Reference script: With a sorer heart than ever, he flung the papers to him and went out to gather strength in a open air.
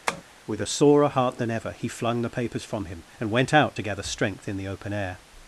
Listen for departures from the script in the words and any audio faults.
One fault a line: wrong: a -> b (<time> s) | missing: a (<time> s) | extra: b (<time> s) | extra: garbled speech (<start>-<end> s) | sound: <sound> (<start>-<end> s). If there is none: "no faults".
sound: tap (0.1-0.2 s)
wrong: to -> from (2.6 s)
wrong: a -> the (4.5 s)